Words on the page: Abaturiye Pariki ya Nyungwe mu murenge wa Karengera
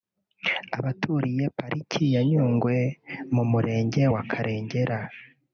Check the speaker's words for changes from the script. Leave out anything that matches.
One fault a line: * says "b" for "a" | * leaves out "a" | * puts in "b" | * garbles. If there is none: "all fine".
all fine